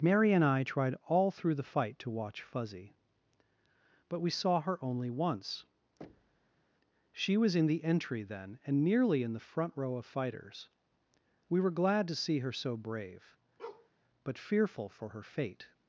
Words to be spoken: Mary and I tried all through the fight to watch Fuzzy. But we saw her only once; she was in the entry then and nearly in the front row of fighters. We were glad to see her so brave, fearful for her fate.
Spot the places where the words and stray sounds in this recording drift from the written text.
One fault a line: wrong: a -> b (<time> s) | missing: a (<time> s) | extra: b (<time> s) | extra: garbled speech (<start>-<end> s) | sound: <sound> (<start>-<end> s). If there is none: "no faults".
sound: thud (6.0-6.7 s)
sound: bark (13.6-13.9 s)
extra: but (14.2 s)